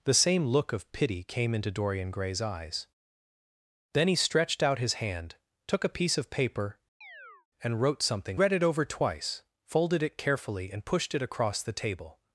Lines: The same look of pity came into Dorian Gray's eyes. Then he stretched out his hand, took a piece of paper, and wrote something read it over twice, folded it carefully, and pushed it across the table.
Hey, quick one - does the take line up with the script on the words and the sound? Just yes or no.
no